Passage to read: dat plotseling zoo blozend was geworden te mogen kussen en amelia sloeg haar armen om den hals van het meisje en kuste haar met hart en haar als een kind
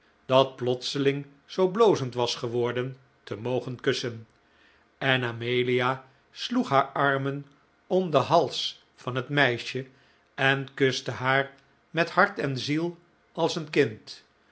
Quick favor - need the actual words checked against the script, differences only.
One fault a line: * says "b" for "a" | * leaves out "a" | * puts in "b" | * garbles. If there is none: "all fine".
* says "ziel" for "haar"